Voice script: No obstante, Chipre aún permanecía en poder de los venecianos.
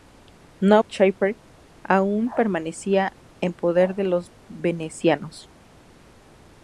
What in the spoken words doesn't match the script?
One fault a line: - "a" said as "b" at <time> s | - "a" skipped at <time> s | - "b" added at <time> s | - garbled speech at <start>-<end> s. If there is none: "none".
- "obstante" skipped at 0.8 s